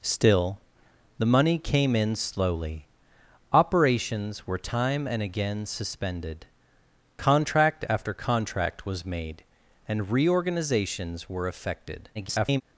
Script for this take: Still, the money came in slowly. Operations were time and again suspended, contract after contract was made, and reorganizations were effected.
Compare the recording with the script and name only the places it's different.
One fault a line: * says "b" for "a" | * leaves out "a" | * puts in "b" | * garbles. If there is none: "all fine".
* garbles